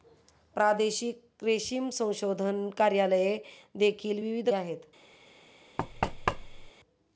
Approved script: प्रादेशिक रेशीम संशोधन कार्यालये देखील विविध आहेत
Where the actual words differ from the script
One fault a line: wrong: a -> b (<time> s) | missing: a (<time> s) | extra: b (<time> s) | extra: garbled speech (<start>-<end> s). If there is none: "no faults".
no faults